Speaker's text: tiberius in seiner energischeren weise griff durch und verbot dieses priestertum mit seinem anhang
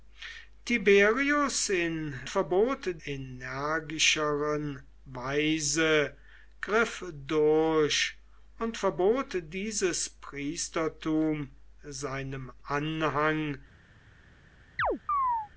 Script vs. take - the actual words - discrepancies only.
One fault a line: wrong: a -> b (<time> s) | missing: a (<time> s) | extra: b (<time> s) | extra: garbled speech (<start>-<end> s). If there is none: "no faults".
wrong: seiner -> verbot (2.3 s)
missing: mit (11.5 s)